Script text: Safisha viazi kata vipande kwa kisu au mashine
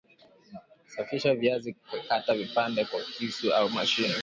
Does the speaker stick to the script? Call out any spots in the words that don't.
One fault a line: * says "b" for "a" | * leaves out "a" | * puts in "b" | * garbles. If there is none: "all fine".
all fine